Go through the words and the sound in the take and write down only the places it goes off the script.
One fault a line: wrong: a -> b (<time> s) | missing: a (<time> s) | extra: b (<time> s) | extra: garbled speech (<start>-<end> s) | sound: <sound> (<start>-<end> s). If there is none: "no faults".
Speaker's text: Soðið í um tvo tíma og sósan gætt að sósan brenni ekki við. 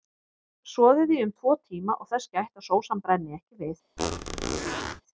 wrong: sósan -> þess (2.1 s)
sound: squeak (4.0-5.0 s)